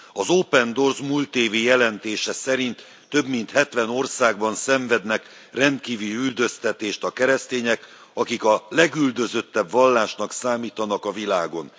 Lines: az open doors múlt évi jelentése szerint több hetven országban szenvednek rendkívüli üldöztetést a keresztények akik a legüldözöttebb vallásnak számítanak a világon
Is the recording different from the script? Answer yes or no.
yes